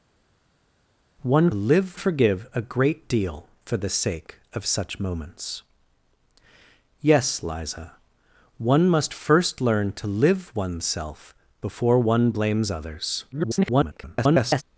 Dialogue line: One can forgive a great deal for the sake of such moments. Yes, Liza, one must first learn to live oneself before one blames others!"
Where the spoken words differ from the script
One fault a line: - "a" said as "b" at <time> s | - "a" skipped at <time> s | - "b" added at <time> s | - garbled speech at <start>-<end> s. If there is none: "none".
- "can" said as "live" at 1.5 s
- garbled speech at 13.3-14.6 s